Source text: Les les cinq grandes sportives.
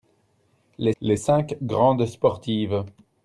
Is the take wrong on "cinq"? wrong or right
right